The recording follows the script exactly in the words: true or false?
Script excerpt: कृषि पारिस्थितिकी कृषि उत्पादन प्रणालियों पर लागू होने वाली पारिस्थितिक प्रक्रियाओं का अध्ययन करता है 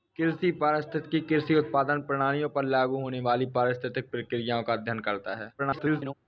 false